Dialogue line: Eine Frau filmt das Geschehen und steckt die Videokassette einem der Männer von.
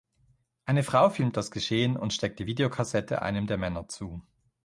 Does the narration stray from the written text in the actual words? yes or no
yes